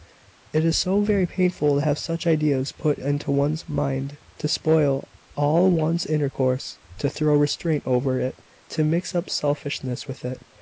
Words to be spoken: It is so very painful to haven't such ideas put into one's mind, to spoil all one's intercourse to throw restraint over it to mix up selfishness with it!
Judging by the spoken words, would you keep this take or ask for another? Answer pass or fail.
fail